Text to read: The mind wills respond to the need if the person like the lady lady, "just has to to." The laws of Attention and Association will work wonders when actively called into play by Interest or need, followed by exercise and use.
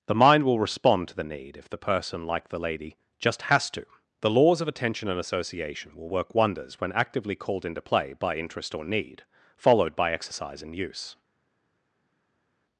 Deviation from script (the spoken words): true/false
true